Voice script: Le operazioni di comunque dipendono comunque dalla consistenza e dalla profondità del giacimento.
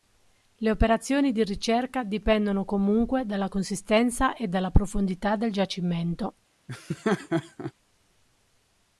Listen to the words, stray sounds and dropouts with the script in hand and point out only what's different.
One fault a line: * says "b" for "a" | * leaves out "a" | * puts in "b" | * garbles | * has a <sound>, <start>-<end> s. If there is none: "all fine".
* says "ricerca" for "comunque"
* has a laugh, 6.7-7.7 s